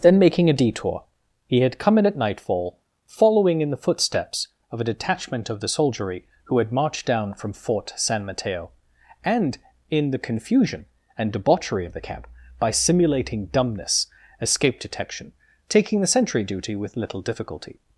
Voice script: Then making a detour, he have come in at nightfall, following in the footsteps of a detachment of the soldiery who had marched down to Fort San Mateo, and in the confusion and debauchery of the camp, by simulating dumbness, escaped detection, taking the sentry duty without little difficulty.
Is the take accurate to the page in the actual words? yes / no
no